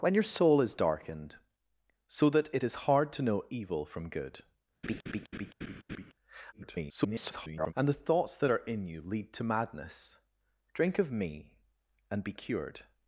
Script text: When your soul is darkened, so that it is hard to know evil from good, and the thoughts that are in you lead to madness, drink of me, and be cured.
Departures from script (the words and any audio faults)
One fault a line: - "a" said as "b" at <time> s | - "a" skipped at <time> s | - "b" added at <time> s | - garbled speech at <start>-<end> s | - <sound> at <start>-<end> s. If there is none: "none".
- laugh at 4.8-6.1 s
- garbled speech at 6.5-7.7 s